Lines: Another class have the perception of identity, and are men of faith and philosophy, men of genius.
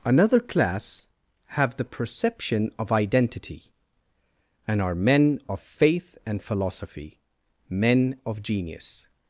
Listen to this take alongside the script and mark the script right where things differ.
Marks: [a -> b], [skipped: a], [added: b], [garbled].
Another class have the perception of identity, and are men of faith and philosophy, men of genius.